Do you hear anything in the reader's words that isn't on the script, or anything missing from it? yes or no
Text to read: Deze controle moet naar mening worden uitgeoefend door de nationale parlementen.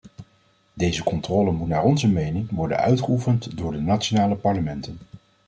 yes